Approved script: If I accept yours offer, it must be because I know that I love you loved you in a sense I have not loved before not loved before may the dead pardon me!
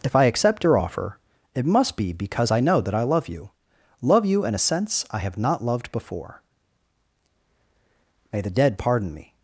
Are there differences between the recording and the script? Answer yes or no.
yes